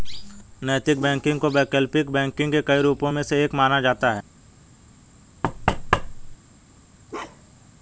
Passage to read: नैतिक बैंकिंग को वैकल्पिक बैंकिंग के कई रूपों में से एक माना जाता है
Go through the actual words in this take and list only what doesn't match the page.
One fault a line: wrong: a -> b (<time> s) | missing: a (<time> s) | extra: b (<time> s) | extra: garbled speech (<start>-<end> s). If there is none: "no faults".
no faults